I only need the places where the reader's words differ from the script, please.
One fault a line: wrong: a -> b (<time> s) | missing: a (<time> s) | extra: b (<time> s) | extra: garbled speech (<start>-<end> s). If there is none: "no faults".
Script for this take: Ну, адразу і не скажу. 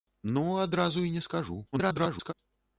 extra: garbled speech (1.7-2.3 s)